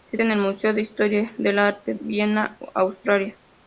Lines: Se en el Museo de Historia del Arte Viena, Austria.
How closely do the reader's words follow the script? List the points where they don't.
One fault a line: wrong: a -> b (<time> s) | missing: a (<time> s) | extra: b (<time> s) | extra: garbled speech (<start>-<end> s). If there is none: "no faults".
no faults